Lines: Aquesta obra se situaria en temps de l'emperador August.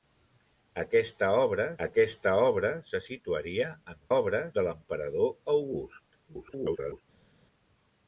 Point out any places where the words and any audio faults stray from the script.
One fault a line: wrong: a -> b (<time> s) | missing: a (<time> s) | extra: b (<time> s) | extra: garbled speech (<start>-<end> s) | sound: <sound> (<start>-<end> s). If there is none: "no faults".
extra: aquesta obra (1.9 s)
wrong: temps -> obra (4.2 s)
extra: garbled speech (6.3-7.0 s)